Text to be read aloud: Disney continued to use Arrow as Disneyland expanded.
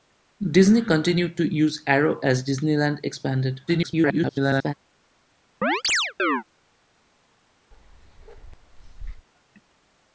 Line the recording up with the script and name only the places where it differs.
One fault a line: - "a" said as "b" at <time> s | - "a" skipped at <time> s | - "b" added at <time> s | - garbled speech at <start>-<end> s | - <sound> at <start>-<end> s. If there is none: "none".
- garbled speech at 3.7-4.7 s
- chirp at 5.6-6.4 s
- bark at 7.7-9.3 s